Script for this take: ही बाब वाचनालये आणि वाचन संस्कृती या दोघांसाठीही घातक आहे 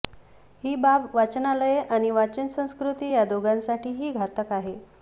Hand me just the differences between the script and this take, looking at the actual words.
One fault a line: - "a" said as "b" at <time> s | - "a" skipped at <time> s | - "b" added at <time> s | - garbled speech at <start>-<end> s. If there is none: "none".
none